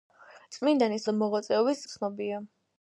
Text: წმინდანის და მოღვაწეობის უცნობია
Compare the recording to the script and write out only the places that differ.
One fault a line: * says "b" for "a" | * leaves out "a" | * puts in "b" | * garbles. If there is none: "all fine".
all fine